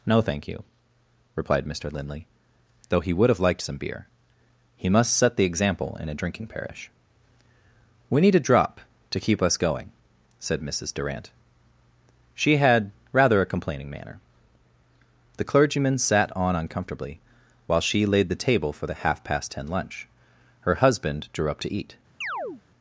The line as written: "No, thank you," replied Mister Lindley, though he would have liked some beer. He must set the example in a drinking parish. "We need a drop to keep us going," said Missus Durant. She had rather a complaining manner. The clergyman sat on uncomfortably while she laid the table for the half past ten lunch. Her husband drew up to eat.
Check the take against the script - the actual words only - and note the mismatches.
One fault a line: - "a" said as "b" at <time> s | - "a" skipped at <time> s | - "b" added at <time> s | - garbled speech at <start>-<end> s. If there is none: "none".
none